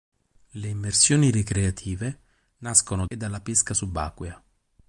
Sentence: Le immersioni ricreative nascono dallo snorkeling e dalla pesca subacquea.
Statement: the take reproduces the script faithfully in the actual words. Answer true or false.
false